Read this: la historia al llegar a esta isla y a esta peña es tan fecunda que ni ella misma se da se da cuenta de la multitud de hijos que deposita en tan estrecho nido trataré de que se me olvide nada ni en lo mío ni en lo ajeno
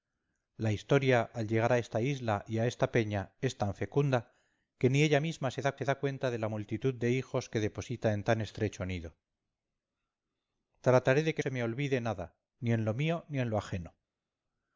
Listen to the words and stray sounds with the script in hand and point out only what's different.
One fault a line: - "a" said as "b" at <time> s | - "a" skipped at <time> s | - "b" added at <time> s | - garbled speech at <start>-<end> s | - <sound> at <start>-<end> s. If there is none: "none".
none